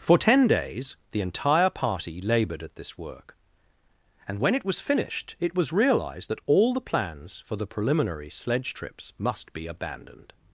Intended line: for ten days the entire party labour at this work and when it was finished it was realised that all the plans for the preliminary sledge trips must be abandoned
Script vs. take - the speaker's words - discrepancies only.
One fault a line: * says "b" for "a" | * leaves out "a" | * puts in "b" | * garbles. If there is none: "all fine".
* says "laboured" for "labour"